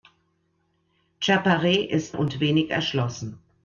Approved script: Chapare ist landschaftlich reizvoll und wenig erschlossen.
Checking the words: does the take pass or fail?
fail